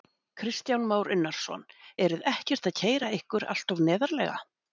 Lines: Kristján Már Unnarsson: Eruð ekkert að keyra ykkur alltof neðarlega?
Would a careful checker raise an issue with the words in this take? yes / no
no